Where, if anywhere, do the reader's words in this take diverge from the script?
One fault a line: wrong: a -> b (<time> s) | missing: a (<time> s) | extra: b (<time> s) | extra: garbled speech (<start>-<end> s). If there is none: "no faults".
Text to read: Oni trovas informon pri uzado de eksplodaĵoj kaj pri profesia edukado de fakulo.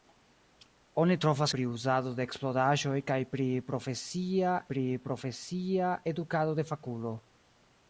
missing: informon (1.5 s)
extra: pri profesia (4.7 s)